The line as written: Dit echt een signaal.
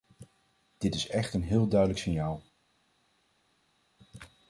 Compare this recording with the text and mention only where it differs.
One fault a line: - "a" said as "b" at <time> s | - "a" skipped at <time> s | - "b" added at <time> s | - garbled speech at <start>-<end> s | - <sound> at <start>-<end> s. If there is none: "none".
- "is" added at 0.9 s
- "heel duidelijk" added at 1.4 s